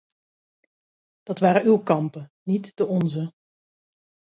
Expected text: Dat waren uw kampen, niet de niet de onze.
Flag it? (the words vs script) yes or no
yes